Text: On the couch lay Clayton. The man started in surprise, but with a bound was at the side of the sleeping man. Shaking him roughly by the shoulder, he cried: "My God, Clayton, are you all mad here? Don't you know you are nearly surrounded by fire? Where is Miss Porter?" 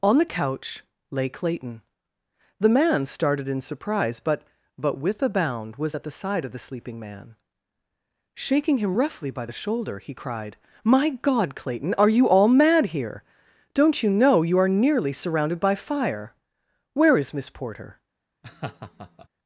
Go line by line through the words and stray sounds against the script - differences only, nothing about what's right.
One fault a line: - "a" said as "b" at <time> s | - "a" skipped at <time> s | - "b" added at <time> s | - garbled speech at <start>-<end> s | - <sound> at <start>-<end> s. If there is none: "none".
- "but" added at 4.8 s
- laugh at 18.4-19.3 s